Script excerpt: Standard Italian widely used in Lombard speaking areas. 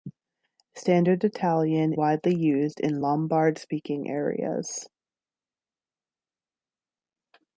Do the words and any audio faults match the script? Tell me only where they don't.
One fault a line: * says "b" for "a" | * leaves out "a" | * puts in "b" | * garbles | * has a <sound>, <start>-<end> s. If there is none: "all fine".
all fine